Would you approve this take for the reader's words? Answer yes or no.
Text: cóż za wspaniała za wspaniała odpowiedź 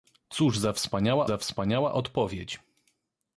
yes